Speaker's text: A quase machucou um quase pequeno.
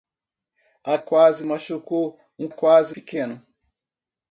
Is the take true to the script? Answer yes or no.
yes